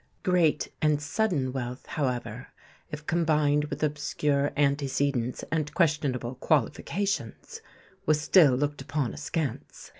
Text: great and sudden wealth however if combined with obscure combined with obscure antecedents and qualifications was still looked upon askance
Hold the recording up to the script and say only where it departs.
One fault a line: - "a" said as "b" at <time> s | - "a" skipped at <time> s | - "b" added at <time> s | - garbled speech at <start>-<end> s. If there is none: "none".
- "combined with obscure" skipped at 4.5 s
- "questionable" added at 5.7 s